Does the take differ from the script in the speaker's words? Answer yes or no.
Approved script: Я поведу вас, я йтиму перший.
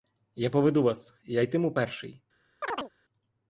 no